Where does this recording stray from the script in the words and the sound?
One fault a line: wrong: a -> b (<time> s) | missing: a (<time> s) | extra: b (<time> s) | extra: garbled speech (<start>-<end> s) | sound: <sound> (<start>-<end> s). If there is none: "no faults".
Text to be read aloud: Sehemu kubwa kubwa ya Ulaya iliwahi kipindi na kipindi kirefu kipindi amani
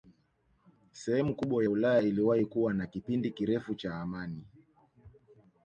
missing: kubwa (1.6 s)
wrong: kipindi -> kuwa (2.5 s)
wrong: kipindi -> cha (3.8 s)